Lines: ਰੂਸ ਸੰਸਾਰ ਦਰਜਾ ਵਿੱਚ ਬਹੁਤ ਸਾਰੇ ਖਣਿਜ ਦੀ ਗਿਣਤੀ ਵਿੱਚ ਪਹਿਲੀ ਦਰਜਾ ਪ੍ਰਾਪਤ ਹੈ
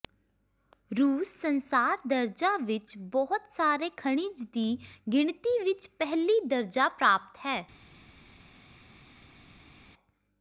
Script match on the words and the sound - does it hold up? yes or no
yes